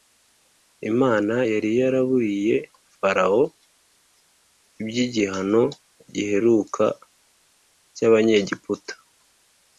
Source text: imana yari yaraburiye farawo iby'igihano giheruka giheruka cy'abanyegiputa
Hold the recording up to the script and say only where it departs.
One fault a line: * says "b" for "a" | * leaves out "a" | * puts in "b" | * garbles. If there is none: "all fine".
* leaves out "giheruka"